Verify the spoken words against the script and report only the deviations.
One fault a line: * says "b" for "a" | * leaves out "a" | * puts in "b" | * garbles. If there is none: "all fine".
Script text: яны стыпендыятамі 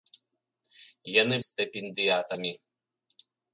all fine